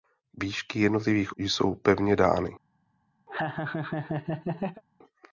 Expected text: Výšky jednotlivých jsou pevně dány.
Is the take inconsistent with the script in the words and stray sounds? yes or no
yes